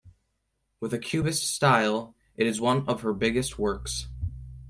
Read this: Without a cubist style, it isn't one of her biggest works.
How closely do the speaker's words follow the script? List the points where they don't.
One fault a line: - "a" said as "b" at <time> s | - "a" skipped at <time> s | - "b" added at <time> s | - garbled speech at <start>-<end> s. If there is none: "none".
- "Without" said as "With" at 0.8 s
- "isn't" said as "is" at 2.5 s